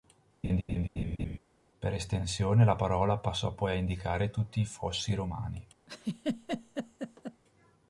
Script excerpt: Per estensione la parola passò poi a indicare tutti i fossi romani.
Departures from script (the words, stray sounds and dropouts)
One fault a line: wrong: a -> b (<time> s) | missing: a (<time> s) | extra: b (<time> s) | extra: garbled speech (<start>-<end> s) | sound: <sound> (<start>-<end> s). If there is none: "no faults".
sound: laugh (0.4-1.4 s)
sound: laugh (5.9-7.4 s)